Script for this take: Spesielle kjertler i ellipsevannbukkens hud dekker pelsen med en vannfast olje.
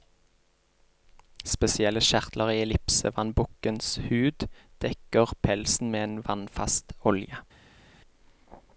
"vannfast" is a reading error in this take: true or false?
false